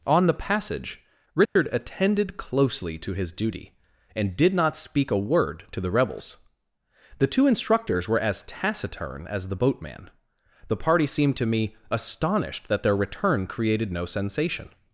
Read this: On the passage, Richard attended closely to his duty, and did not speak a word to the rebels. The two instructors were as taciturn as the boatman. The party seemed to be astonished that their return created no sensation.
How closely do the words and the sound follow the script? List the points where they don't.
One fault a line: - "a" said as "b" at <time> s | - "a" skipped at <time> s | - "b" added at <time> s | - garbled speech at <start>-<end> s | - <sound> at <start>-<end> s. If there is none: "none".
- dropout at 1.5-1.6 s
- "be" said as "me" at 11.5 s